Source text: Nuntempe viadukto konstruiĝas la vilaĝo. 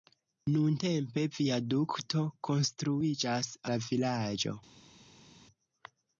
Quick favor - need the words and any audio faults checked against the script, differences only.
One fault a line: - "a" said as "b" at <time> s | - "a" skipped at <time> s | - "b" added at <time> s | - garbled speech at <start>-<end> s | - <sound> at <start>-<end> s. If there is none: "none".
none